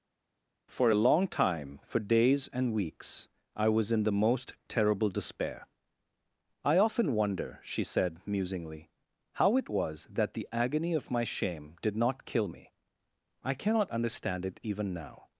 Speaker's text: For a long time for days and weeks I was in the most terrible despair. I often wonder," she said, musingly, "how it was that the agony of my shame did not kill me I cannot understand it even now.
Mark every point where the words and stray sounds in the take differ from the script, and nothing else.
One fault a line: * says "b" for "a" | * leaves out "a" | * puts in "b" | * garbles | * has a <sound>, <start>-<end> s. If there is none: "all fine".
all fine